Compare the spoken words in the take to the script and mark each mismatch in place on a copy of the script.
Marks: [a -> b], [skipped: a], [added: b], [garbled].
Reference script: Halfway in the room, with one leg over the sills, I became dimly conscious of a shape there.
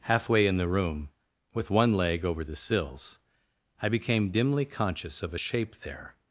Halfway in the room, with one leg over the sills, I became dimly conscious of a shape there.